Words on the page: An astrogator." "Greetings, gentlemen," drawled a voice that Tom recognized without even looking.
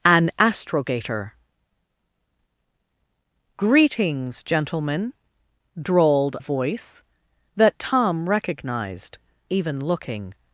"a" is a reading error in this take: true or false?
true